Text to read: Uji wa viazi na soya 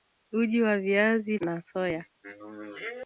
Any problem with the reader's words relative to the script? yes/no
no